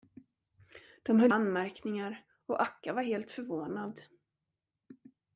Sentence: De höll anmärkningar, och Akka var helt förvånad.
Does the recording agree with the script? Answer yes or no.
yes